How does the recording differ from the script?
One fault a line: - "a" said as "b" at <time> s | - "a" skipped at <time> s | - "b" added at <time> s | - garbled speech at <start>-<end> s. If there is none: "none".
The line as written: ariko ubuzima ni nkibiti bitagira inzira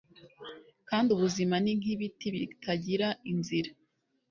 - "ariko" said as "kandi" at 0.9 s